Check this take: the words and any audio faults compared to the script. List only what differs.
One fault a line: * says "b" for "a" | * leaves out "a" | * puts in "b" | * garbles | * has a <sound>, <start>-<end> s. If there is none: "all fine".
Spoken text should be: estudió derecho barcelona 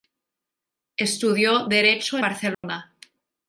* has a dropout, 2.5-2.6 s